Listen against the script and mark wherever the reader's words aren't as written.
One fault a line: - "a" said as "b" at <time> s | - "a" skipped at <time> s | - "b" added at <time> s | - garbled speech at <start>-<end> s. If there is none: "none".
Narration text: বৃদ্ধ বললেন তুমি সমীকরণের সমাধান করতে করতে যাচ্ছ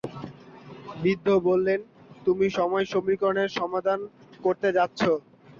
- "সময়" added at 2.6 s
- "করতে" skipped at 4.7 s